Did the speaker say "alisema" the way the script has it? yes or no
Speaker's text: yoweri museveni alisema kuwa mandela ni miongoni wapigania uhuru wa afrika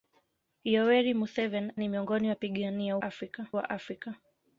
no